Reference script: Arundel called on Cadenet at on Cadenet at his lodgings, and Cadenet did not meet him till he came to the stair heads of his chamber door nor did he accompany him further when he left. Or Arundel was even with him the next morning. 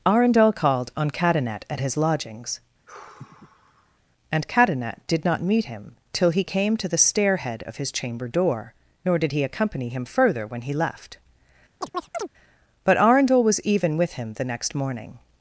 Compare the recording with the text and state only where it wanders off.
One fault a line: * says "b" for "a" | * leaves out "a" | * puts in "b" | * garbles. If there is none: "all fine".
* leaves out "on Cadenet at"
* says "head" for "heads"
* says "But" for "Or"